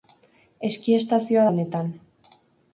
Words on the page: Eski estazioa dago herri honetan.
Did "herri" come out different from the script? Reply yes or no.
yes